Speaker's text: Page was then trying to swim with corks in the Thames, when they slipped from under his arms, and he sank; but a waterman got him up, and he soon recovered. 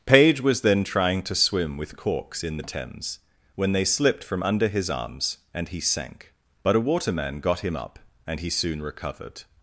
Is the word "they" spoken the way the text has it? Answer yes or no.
yes